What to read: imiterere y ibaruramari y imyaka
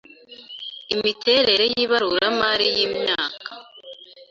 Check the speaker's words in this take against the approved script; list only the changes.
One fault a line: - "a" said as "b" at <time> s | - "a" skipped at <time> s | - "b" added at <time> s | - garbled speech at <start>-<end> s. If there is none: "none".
none